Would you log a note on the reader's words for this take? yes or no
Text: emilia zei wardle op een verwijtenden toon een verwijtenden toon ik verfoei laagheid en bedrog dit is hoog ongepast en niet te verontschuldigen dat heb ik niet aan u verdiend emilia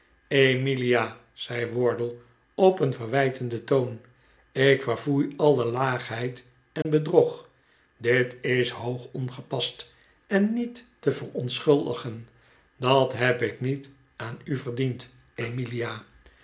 yes